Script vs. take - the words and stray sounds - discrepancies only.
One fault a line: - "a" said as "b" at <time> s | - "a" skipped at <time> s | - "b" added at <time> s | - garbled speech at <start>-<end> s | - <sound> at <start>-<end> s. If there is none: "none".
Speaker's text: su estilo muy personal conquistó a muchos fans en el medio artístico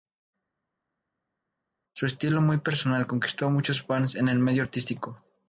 none